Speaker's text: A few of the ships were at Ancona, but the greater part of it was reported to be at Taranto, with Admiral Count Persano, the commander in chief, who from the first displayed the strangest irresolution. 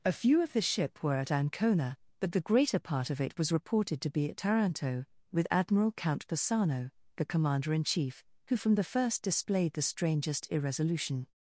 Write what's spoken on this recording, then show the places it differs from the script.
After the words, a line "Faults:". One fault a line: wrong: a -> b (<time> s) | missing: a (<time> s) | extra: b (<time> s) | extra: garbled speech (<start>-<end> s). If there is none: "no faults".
A few of the ship were at Ancona, but the greater part of it was reported to be at Taranto, with Admiral Count Persano, the commander in chief, who from the first displayed the strangest irresolution.
Faults:
wrong: ships -> ship (0.6 s)